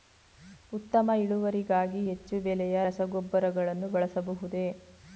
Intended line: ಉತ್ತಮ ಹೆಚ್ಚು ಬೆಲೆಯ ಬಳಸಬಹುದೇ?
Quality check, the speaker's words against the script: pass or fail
fail